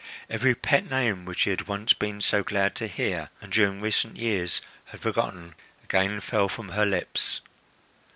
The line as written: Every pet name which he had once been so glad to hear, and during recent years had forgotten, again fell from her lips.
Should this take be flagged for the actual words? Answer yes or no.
no